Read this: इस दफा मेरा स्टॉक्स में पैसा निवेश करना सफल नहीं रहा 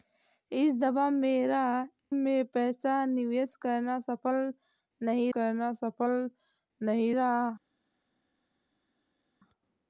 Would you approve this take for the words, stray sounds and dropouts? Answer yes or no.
no